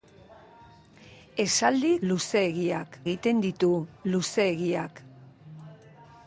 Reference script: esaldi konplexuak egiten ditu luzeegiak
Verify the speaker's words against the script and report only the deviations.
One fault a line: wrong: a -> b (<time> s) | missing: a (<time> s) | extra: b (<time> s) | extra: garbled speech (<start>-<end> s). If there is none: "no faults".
wrong: konplexuak -> luzeegiak (2.1 s)